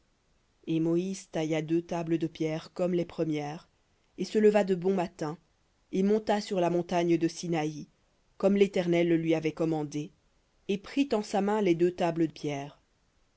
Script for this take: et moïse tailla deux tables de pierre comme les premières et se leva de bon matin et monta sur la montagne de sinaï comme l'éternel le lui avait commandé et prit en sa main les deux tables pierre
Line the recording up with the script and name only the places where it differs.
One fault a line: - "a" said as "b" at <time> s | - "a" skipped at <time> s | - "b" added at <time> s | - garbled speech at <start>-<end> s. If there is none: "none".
none